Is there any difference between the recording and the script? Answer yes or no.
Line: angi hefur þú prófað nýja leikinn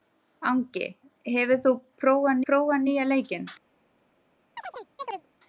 yes